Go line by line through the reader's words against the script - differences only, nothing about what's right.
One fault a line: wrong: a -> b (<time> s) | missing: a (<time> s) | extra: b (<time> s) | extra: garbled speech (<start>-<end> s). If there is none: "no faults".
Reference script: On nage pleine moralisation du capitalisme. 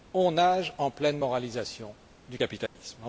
extra: en (0.8 s)